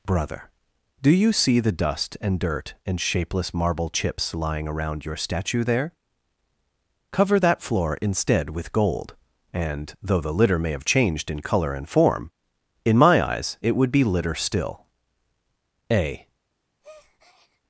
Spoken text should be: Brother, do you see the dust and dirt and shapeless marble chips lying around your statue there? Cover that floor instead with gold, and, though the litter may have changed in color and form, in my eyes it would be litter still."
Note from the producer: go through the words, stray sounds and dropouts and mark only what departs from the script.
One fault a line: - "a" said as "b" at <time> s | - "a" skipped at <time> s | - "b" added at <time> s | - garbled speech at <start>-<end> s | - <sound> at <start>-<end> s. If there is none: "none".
- "A" added at 15.9 s
- breath at 16.8-17.6 s